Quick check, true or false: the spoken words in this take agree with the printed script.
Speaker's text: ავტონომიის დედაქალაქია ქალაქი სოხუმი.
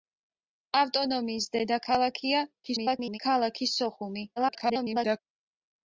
false